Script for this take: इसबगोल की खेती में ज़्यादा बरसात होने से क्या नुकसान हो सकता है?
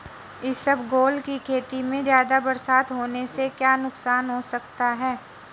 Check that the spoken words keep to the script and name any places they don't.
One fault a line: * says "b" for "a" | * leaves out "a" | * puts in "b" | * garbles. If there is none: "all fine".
all fine